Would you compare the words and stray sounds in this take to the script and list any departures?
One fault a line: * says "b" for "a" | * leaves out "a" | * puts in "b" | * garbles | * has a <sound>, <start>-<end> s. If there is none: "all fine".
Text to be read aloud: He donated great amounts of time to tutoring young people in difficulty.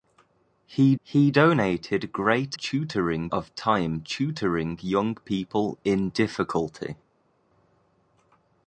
* puts in "he"
* says "tutoring" for "amounts"
* leaves out "to"